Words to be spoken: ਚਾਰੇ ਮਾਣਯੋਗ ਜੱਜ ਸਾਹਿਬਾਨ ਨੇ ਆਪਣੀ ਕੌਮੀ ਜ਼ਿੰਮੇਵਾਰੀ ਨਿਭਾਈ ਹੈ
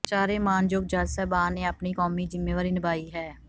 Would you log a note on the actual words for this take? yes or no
no